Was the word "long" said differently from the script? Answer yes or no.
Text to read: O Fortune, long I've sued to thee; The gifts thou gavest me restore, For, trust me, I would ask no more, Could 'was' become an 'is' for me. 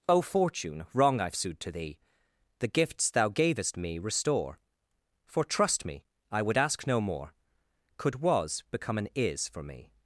yes